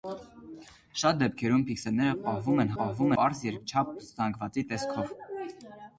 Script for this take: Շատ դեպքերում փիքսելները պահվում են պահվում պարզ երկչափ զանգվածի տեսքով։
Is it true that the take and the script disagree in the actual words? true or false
false